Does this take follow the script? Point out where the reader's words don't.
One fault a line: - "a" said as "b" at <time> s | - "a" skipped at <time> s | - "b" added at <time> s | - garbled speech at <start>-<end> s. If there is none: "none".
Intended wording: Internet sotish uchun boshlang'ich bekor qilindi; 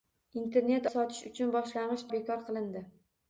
none